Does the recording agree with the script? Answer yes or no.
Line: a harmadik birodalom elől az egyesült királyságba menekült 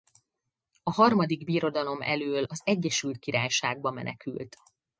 yes